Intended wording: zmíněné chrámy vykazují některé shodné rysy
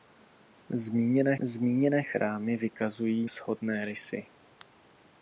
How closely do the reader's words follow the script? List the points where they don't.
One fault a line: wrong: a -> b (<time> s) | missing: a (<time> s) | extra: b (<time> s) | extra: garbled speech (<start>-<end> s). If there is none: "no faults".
extra: zmíněné (1.4 s)
missing: některé (3.3 s)